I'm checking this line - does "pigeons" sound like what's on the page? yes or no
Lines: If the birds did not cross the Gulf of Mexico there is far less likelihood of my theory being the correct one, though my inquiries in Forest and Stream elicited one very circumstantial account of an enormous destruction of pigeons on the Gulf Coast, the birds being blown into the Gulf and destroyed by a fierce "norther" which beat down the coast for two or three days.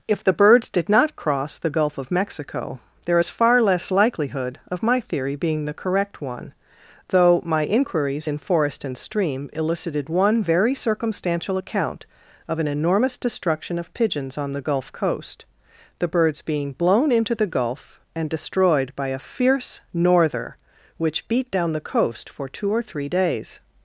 yes